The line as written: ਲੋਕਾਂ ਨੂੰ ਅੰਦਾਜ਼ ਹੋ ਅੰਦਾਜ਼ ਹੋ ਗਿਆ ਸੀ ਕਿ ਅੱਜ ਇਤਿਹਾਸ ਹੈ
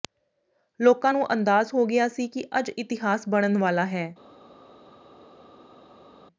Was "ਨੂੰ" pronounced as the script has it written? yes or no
yes